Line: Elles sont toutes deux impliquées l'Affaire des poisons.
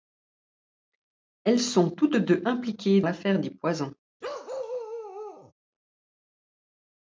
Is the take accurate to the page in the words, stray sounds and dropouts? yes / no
no